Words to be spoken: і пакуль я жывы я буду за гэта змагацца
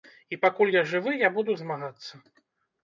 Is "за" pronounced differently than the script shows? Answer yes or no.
yes